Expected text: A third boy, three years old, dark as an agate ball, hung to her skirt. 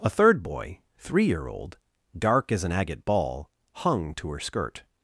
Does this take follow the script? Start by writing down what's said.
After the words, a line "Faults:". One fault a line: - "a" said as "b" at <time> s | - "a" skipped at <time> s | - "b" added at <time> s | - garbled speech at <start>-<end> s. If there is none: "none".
A third boy, three year old, dark as an agate ball, hung to her skirt.
Faults:
- "years" said as "year" at 1.2 s